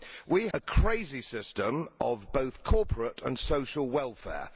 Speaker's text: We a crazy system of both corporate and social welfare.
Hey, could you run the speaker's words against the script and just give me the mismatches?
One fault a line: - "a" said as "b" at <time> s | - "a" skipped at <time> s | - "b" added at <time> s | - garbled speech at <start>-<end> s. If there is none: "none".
none